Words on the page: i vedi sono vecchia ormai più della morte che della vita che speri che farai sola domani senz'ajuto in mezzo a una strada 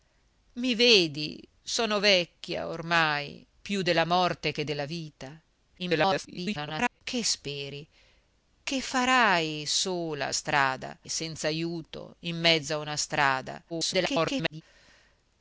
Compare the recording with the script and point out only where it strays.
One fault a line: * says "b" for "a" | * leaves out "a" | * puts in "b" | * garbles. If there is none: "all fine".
* garbles
* says "strada" for "domani"
* garbles